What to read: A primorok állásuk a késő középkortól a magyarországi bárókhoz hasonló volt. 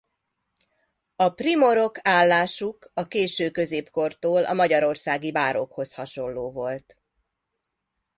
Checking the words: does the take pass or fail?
pass